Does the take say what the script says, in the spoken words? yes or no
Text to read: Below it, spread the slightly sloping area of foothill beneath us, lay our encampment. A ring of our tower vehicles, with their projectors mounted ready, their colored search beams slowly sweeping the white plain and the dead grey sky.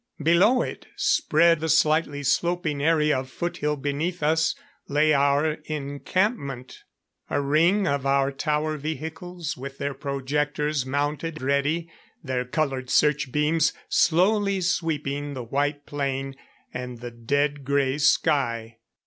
yes